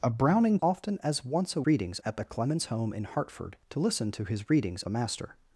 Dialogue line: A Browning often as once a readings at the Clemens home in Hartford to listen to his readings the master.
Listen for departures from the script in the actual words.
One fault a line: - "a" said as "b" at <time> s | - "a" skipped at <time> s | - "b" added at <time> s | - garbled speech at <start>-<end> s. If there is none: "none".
none